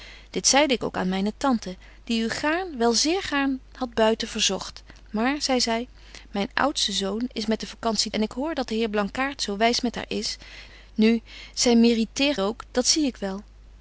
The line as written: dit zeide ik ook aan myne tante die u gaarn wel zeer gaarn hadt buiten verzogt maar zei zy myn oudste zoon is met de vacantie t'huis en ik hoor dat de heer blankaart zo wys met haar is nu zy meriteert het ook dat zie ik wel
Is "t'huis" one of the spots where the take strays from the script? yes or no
yes